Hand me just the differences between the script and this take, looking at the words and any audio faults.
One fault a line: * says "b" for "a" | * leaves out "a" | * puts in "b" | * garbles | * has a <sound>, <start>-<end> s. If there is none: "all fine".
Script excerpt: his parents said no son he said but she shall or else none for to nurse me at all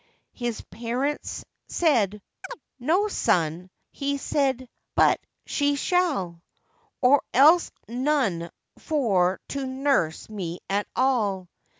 * has a chirp, 2.4-2.6 s